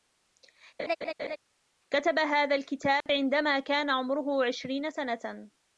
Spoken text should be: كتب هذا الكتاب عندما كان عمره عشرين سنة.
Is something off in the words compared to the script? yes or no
no